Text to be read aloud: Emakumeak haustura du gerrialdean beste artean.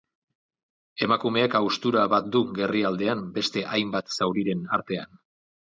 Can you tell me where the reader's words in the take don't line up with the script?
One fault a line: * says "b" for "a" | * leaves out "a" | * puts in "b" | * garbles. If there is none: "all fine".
* puts in "bat"
* puts in "hainbat zauriren"